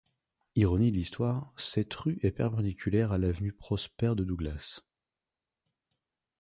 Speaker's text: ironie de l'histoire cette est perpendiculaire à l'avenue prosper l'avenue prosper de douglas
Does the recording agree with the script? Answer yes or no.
no